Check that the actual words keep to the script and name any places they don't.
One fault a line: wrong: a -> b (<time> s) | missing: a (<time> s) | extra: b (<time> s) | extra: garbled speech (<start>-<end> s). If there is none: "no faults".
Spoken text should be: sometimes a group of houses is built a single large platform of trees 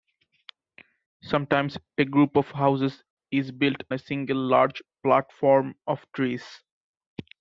no faults